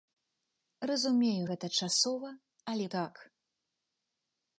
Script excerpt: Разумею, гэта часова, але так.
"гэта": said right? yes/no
yes